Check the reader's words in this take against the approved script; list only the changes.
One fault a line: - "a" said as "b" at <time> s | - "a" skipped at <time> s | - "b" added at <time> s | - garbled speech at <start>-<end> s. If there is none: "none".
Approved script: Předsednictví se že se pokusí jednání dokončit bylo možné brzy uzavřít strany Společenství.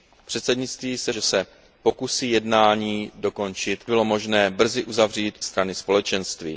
none